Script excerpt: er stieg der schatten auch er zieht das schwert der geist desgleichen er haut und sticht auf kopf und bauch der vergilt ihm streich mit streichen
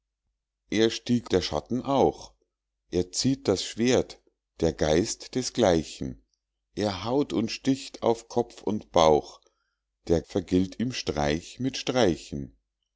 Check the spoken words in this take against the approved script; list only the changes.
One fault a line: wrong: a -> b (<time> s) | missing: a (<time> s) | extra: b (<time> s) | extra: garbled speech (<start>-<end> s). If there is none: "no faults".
no faults